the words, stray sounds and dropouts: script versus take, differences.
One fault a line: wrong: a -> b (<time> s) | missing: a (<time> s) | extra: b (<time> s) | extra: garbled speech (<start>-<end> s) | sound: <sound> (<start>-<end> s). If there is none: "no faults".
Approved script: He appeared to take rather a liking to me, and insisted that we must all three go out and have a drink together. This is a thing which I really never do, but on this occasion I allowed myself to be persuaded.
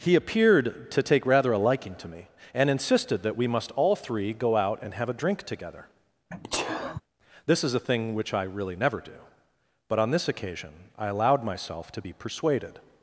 sound: sneeze (6.3-7.0 s)